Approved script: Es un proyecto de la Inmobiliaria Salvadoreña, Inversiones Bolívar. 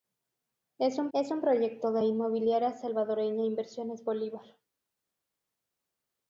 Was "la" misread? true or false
true